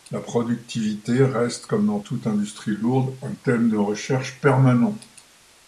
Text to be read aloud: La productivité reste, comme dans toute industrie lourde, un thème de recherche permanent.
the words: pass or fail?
pass